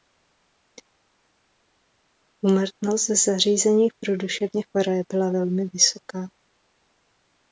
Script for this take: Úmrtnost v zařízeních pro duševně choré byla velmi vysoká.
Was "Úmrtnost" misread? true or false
false